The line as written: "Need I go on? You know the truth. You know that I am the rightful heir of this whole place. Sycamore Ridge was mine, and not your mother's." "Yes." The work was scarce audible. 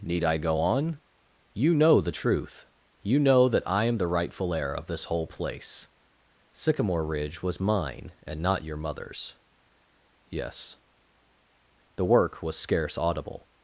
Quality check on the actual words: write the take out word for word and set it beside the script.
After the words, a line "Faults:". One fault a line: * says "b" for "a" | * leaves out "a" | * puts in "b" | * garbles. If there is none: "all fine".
"Need I go on? You know the truth. You know that I am the rightful heir of this whole place. Sycamore Ridge was mine, and not your mother's." "Yes." The work was scarce audible.
Faults:
all fine